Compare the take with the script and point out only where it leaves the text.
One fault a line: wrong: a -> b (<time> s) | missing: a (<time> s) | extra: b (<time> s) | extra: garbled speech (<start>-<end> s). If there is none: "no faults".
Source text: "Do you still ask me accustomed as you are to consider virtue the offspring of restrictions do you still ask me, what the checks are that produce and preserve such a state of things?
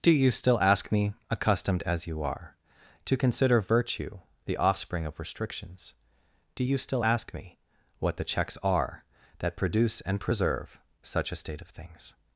no faults